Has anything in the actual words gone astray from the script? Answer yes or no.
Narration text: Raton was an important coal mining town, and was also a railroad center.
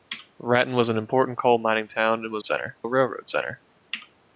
yes